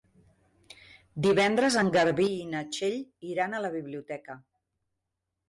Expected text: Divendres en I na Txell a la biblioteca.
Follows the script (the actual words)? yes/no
no